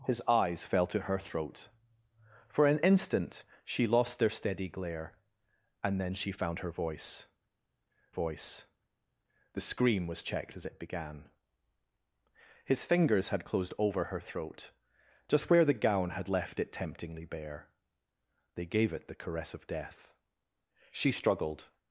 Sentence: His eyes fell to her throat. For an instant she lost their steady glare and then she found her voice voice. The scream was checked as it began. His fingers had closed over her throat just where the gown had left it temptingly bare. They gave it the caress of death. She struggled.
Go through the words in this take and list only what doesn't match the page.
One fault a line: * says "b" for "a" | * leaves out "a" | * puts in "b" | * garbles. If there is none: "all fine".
all fine